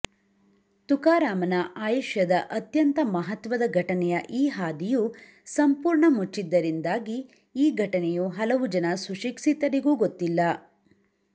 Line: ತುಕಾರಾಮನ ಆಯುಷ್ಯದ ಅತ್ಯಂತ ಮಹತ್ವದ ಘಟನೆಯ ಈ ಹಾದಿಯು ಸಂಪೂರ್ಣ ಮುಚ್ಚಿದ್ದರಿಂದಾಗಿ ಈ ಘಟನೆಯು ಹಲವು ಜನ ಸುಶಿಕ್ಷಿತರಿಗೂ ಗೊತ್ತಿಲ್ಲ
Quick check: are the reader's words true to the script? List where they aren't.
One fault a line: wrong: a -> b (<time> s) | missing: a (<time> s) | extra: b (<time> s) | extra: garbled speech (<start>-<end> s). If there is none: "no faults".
no faults